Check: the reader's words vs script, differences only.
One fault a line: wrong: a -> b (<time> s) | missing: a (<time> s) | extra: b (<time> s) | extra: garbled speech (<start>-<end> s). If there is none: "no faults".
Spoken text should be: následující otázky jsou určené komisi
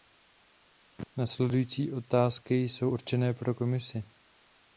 extra: pro (3.3 s)